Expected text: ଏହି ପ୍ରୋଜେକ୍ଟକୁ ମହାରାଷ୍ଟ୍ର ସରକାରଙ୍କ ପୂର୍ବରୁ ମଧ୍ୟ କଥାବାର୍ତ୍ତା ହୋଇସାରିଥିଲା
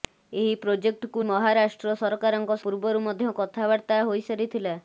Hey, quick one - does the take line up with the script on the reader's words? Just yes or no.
yes